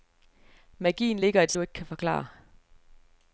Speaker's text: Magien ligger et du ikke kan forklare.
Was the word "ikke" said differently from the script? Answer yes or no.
no